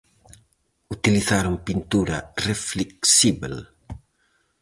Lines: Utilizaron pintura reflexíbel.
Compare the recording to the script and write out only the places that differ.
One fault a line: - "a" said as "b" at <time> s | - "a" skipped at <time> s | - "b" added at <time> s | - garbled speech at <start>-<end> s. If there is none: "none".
none